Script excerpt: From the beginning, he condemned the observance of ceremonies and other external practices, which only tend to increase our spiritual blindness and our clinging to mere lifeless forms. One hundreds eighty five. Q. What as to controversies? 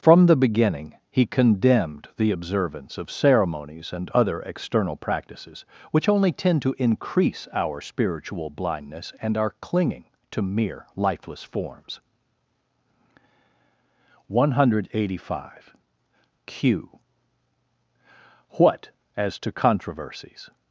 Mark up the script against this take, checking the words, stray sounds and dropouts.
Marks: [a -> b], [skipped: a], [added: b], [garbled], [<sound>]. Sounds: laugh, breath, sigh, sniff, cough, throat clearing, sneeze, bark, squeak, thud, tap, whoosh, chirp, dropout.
From the beginning, he condemned the observance of ceremonies and other external practices, which only tend to increase our spiritual blindness and our clinging to mere lifeless forms. One [hundreds -> hundred] eighty five. Q. What as to controversies?